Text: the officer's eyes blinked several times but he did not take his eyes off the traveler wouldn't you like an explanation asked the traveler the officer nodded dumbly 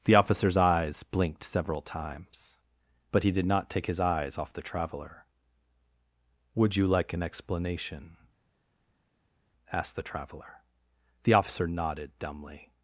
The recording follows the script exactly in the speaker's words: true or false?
false